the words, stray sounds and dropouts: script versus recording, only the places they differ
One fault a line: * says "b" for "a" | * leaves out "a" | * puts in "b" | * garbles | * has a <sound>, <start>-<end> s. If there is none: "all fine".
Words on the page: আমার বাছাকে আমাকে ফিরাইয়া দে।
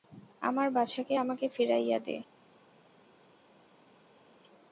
all fine